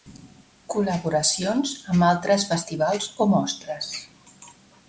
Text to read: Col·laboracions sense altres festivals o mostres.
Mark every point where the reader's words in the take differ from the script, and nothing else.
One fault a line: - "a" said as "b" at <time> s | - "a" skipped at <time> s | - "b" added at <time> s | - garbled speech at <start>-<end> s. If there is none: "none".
- "sense" said as "amb" at 1.9 s